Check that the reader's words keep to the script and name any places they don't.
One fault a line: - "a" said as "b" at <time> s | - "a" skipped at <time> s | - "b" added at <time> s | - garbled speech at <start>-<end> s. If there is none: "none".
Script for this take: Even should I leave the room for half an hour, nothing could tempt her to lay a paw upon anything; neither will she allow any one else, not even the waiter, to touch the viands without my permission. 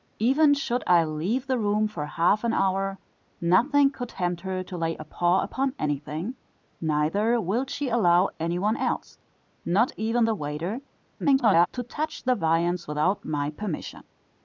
- garbled speech at 11.2-11.7 s